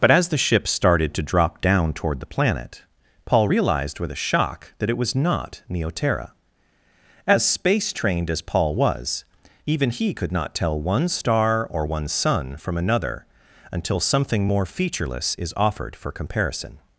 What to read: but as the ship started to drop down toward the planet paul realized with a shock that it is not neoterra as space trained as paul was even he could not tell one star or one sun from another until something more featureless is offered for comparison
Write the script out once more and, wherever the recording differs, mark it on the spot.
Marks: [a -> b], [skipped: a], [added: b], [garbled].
but as the ship started to drop down toward the planet paul realized with a shock that it [is -> was] not neoterra as space trained as paul was even he could not tell one star or one sun from another until something more featureless is offered for comparison